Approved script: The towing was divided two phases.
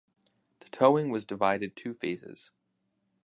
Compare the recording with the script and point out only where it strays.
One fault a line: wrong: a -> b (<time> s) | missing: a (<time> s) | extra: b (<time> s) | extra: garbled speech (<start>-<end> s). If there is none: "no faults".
no faults